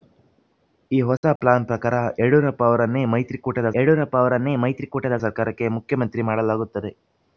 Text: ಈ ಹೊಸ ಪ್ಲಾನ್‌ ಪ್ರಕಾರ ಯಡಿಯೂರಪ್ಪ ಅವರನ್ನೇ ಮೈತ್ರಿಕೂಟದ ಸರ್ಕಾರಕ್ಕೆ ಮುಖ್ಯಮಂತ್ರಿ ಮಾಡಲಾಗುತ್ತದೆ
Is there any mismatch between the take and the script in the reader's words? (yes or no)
yes